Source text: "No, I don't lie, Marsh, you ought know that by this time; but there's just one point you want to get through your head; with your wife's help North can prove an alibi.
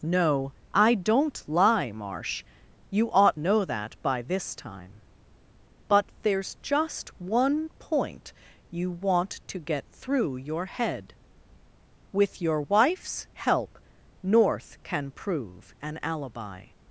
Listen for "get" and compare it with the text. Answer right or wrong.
right